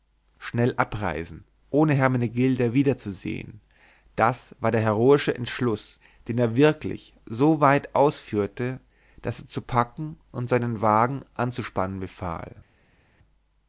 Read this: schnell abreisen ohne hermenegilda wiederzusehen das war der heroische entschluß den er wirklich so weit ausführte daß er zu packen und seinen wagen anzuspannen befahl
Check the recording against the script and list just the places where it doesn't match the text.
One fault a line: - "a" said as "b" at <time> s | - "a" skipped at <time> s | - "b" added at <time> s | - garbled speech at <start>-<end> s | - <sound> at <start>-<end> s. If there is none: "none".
none